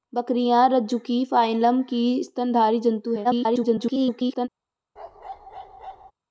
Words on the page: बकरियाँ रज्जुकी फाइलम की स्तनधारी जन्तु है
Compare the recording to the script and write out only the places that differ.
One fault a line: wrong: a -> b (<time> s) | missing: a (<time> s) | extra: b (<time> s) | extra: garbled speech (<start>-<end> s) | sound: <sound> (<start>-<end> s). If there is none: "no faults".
extra: garbled speech (3.2-4.5 s)
sound: bark (5.0-6.1 s)